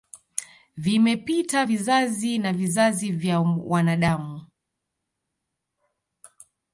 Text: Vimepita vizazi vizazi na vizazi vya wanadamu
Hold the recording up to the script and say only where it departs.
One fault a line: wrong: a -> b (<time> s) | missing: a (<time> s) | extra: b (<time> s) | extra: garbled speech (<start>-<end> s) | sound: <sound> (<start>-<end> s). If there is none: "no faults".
missing: vizazi (2.4 s)